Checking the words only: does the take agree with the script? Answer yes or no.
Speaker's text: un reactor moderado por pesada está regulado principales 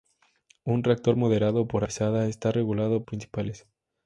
yes